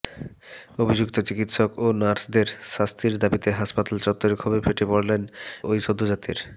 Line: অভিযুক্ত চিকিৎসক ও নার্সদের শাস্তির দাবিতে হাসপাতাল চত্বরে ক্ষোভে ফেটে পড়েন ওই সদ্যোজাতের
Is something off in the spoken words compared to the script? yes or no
no